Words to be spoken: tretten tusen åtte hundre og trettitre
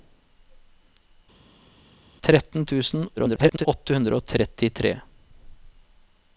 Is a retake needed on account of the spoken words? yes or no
yes